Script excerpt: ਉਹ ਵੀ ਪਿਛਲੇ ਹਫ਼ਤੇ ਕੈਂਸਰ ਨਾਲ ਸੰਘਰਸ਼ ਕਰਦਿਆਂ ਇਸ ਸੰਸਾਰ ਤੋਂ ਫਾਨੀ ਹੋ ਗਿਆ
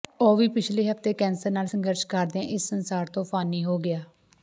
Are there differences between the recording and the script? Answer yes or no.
no